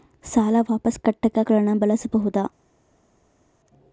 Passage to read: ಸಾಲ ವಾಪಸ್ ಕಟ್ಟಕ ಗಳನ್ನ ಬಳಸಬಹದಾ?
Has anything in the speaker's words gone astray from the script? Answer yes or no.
no